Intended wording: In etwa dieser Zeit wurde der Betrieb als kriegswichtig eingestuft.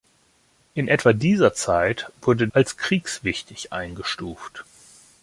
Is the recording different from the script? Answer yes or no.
yes